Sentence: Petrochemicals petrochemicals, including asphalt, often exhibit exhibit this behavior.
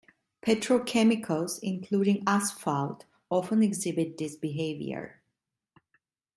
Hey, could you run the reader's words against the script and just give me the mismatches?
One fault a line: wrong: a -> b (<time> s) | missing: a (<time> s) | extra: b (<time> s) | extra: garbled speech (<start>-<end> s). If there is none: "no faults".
missing: petrochemicals (1.6 s)
missing: exhibit (4.2 s)